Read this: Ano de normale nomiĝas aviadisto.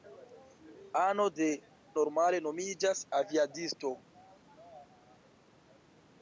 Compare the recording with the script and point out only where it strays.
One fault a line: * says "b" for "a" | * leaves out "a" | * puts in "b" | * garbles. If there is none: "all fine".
all fine